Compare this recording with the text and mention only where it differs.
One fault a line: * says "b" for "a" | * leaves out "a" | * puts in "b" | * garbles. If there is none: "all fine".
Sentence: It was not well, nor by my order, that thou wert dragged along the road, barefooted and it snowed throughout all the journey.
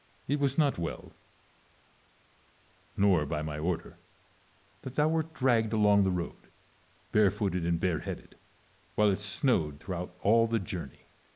* puts in "bareheaded while"